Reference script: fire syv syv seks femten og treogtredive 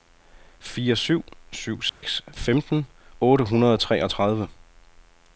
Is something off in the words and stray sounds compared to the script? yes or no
yes